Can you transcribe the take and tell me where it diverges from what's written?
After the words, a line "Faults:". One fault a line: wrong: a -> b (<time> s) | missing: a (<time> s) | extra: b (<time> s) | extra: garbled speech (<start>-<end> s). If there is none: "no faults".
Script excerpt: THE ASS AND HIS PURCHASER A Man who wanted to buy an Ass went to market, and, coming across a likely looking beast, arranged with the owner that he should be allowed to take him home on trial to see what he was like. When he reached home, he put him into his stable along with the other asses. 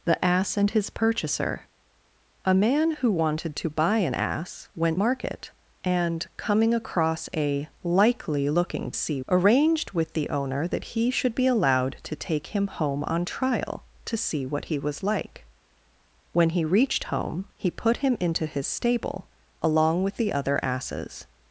THE ASS AND HIS PURCHASER A Man who wanted to buy an Ass went market, and, coming across a likely looking see, arranged with the owner that he should be allowed to take him home on trial to see what he was like. When he reached home, he put him into his stable along with the other asses.
Faults:
missing: to (5.0 s)
wrong: beast -> see (8.9 s)